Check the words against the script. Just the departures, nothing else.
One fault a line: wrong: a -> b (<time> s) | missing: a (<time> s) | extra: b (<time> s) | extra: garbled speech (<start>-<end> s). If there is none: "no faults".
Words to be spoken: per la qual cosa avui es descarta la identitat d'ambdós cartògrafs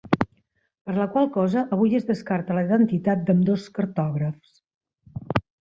no faults